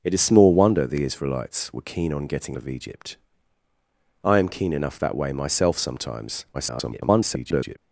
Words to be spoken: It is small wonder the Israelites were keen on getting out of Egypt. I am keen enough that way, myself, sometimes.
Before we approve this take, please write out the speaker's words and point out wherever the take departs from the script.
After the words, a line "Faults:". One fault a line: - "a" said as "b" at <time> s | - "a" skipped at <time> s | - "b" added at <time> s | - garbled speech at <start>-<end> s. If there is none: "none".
It is small wonder the Israelites were keen on getting of Egypt. I am keen enough that way, myself, sometimes. [garbled]
Faults:
- "out" skipped at 2.6 s
- garbled speech at 6.5-7.8 s